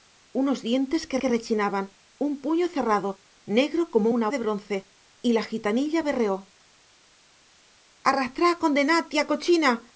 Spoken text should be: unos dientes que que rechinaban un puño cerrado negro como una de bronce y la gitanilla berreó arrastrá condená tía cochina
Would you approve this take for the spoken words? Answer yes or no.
yes